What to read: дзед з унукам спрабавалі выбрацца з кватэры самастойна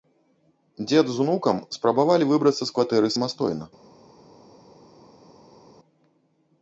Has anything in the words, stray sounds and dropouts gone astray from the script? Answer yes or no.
no